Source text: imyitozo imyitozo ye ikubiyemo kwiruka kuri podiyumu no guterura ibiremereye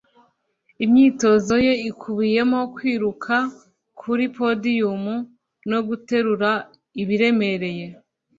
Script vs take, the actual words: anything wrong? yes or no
yes